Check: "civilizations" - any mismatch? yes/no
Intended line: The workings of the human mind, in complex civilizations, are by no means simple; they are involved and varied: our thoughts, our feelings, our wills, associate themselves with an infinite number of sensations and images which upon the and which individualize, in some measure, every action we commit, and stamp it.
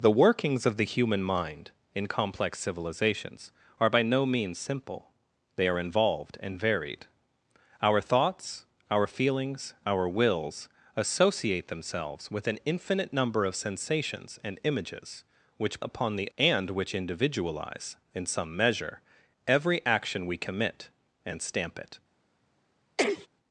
no